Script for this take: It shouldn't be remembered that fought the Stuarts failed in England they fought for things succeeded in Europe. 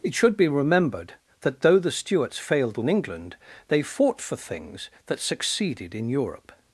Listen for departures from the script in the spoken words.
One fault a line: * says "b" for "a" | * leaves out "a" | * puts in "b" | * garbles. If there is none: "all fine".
* says "should" for "shouldn't"
* says "though" for "fought"
* puts in "that"